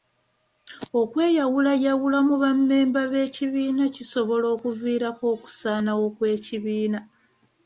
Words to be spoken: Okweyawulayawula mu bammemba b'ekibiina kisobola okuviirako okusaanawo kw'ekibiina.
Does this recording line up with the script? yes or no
yes